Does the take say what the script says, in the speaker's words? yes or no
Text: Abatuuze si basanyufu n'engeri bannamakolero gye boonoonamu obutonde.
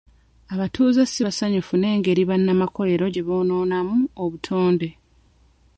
yes